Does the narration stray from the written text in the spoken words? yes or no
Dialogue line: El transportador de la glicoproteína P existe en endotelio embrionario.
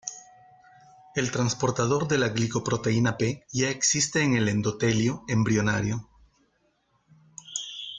yes